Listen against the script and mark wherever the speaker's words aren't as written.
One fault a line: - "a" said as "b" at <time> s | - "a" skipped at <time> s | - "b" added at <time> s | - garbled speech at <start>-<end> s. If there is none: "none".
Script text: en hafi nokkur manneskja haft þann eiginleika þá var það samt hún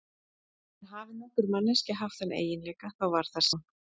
- "samt" skipped at 3.5 s